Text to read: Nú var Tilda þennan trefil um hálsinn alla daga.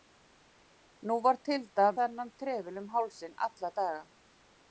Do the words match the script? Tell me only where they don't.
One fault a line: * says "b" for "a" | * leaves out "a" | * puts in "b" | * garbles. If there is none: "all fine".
all fine